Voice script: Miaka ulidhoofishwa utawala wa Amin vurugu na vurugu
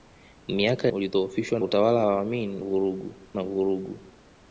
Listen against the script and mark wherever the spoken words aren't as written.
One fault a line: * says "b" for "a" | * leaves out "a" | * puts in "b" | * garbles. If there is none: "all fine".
all fine